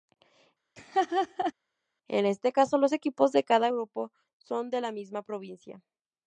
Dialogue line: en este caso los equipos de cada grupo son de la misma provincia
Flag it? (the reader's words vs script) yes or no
no